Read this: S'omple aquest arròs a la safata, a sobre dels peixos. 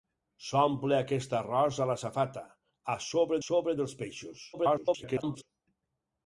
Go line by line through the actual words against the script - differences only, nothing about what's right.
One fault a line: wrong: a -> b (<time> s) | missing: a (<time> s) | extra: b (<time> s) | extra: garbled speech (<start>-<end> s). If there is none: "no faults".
extra: sobre (3.5 s)
extra: garbled speech (4.5-5.4 s)